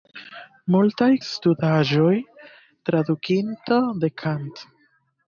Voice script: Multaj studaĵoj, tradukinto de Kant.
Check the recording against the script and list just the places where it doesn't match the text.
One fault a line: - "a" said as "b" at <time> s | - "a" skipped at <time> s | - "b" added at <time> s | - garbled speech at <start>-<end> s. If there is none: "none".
none